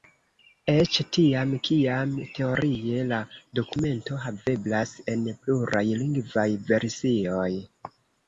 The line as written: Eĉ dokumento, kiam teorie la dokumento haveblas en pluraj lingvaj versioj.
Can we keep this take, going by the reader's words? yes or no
no